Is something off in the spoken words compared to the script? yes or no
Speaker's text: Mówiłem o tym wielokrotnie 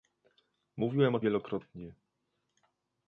yes